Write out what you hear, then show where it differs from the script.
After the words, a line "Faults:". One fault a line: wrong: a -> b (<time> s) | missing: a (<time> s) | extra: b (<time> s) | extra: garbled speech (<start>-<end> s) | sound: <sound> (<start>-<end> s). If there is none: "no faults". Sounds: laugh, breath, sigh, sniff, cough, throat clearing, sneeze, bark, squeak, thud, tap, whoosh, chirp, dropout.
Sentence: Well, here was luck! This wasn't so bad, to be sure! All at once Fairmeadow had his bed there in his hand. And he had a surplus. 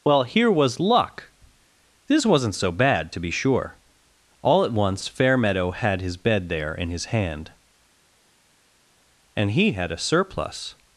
Well, here was luck! This wasn't so bad, to be sure! All at once Fairmeadow had his bed there in his hand. And he had a surplus.
Faults:
no faults